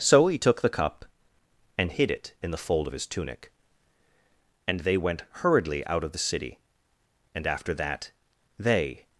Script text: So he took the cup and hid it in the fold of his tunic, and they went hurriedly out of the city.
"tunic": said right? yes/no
yes